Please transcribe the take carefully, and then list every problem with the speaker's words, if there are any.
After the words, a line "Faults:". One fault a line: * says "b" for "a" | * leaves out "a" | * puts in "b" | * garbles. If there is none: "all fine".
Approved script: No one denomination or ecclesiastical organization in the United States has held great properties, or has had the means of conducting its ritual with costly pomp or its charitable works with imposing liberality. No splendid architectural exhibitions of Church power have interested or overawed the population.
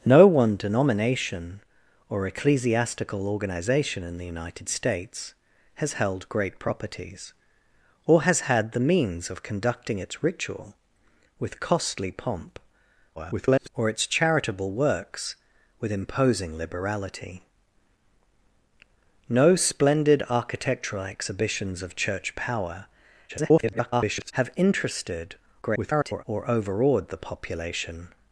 No one denomination or ecclesiastical organization in the United States has held great properties, or has had the means of conducting its ritual with costly pomp [garbled] or its charitable works with imposing liberality. No splendid architectural exhibitions of Church power [garbled] have interested [garbled] or overawed the population.
Faults:
* garbles
* garbles
* garbles